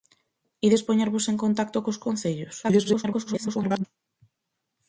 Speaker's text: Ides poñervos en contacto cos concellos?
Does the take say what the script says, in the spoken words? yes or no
no